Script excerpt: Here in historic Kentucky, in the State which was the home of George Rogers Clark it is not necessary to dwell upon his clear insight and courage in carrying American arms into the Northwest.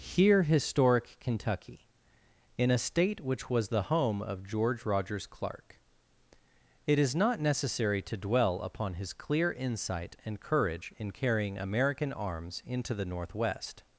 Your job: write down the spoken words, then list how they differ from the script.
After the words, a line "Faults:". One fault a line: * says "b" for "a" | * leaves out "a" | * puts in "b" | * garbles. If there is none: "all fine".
Here historic Kentucky, in a State which was the home of George Rogers Clark it is not necessary to dwell upon his clear insight and courage in carrying American arms into the Northwest.
Faults:
* leaves out "in"
* says "a" for "the"